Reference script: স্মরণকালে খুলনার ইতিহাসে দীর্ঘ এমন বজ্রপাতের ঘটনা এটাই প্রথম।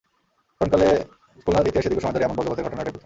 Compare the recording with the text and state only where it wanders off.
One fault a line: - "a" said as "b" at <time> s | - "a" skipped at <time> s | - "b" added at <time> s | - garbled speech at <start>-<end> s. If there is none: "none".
- "সময় ধরে" added at 2.0 s